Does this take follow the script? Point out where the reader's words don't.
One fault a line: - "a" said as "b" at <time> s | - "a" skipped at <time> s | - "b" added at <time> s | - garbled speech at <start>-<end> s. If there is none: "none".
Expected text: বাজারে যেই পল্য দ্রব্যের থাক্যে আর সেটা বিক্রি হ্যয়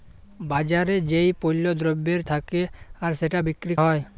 none